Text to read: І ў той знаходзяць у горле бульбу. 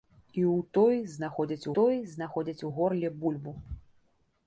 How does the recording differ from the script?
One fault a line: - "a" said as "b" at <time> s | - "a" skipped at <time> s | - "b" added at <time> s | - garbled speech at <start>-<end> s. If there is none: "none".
- "той знаходзяць" added at 1.8 s